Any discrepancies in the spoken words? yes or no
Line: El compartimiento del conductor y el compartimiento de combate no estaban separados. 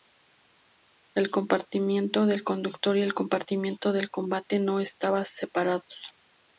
no